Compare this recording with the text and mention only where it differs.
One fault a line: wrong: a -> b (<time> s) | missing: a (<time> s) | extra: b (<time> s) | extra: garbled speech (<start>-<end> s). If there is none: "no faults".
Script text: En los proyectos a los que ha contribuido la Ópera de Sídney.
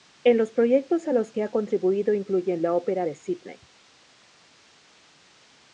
extra: incluyen (2.1 s)